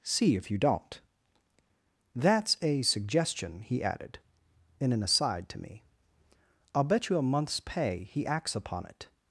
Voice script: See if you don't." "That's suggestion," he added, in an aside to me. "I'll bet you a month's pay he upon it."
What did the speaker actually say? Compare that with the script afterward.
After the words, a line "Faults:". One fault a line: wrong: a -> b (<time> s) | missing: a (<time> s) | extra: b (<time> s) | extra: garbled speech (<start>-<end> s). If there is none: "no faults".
See if you don't." "That's a suggestion," he added, in an aside to me. "I'll bet you a month's pay he acts upon it."
Faults:
extra: a (2.6 s)
extra: acts (8.2 s)